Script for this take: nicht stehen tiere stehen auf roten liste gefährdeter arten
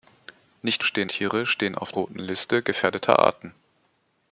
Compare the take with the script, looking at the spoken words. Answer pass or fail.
pass